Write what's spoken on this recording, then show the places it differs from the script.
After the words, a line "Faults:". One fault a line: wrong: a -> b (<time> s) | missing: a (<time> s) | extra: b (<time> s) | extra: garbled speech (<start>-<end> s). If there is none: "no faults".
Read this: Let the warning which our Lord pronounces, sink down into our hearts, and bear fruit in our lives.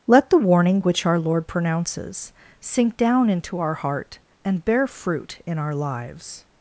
Let the warning which our Lord pronounces, sink down into our heart, and bear fruit in our lives.
Faults:
wrong: hearts -> heart (3.8 s)